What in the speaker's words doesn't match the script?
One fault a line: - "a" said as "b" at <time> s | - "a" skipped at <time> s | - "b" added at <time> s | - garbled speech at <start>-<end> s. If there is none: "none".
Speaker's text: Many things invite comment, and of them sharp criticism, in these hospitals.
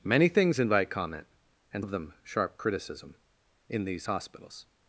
none